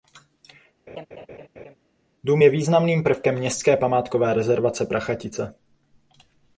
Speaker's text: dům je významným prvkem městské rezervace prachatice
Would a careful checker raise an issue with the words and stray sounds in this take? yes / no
yes